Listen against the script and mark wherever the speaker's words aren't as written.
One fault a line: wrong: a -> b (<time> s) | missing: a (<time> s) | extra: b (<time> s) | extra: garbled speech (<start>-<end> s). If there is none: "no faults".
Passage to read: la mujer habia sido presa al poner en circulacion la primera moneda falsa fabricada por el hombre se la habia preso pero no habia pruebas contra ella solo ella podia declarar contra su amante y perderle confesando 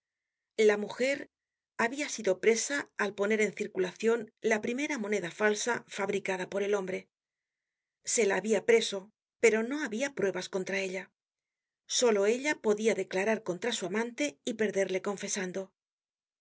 no faults